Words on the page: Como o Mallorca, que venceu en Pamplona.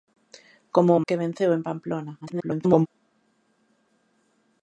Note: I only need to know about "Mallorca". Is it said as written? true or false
false